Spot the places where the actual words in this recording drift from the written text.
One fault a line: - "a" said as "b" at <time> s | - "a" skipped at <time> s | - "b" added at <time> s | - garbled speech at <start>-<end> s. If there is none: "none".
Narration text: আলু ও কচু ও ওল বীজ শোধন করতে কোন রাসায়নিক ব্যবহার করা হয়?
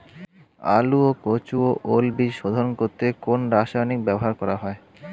none